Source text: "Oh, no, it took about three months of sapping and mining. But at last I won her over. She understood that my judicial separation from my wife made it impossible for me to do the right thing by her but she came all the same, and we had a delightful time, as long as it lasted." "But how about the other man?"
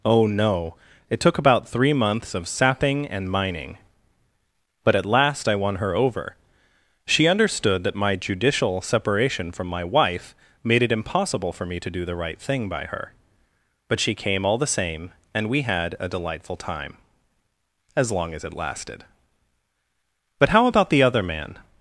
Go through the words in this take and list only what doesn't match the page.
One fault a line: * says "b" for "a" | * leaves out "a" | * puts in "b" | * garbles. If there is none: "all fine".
all fine